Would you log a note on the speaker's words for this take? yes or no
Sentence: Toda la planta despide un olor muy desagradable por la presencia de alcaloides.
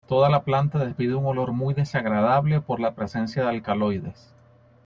no